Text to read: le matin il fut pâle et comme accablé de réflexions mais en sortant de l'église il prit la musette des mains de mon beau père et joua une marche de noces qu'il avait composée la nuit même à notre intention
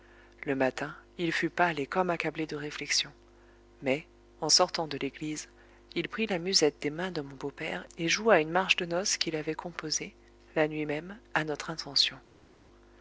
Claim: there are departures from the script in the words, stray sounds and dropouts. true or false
false